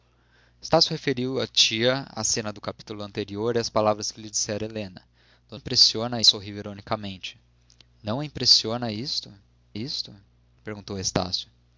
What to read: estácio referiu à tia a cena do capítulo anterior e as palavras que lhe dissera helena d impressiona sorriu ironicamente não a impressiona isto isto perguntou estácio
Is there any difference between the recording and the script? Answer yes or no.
no